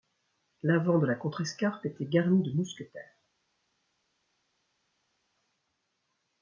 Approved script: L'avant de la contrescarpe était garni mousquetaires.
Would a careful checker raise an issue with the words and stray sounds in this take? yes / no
yes